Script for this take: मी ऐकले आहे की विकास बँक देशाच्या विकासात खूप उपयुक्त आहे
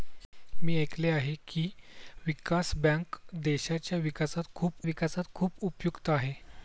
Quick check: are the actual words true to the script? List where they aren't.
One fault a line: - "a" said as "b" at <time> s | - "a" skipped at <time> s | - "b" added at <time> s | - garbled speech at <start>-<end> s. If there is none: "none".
- "विकासात खूप" added at 4.8 s